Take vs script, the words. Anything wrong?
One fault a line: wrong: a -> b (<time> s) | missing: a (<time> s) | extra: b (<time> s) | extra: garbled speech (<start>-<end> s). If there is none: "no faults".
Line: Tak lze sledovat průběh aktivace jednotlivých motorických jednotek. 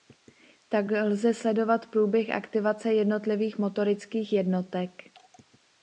no faults